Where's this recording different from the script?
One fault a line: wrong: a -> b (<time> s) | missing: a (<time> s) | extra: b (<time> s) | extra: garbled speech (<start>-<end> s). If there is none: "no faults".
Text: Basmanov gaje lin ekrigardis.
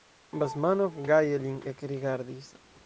no faults